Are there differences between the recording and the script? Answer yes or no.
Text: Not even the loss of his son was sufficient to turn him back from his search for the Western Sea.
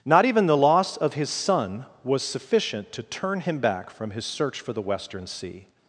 no